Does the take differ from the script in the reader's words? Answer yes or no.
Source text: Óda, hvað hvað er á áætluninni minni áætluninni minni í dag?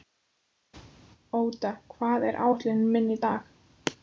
yes